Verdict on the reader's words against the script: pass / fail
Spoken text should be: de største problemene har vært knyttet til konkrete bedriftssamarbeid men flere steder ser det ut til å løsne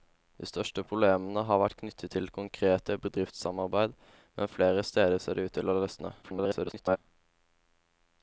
fail